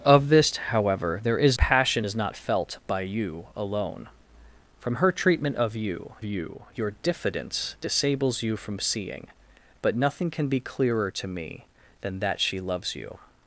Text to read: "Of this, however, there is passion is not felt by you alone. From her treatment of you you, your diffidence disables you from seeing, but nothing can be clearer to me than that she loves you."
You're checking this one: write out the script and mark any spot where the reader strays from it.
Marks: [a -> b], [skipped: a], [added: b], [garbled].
"Of this, however, there is passion is not felt by you alone. From her treatment of you you, your diffidence disables you from seeing, but nothing can be clearer to me than that she loves you."